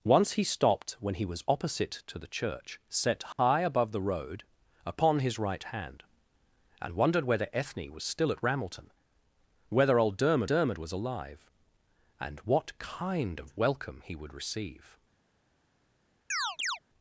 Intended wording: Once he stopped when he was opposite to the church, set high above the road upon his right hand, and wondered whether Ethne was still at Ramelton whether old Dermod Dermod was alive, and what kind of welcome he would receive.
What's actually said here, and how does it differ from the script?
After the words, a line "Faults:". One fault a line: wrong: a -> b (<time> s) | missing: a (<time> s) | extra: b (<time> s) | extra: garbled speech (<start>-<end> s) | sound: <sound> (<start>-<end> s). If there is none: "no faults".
Once he stopped when he was opposite to the church, set high above the road upon his right hand, and wondered whether Ethne was still at Ramelton whether old Dermod Dermod was alive, and what kind of welcome he would receive.
Faults:
sound: dropout (3.3-3.4 s)
sound: chirp (16.3-16.8 s)